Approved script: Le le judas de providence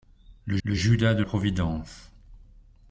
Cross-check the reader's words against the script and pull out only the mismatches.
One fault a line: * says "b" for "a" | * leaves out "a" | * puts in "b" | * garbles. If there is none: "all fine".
all fine